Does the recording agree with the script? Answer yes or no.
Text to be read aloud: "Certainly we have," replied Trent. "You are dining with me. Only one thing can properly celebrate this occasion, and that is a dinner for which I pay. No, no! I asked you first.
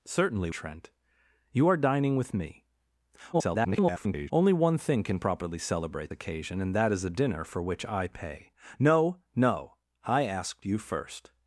no